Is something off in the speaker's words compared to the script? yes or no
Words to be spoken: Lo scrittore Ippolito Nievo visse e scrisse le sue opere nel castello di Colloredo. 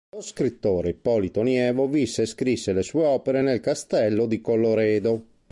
no